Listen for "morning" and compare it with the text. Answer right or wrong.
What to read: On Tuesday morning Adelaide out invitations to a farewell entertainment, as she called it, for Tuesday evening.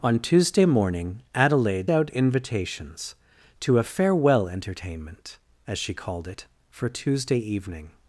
right